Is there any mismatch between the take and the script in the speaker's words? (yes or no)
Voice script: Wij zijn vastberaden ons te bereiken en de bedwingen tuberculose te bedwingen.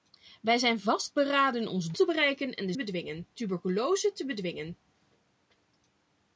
no